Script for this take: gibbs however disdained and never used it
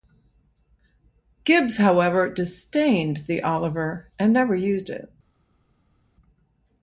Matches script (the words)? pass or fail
fail